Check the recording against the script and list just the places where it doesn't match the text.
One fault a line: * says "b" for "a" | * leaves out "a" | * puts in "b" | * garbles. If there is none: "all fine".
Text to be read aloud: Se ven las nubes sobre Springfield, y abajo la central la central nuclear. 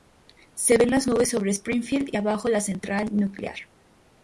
* leaves out "la central"